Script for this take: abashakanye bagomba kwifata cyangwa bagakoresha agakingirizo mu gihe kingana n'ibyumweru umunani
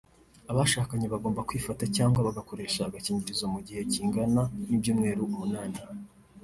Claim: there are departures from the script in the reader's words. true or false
false